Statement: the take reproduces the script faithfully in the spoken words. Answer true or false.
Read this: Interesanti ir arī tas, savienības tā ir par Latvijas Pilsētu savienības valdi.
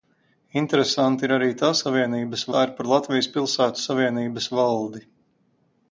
true